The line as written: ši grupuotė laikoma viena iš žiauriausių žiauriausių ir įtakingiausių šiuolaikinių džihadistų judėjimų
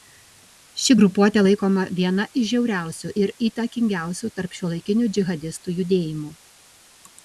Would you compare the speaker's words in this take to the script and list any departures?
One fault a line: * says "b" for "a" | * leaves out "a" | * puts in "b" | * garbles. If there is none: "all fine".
* leaves out "žiauriausių"
* puts in "tarp"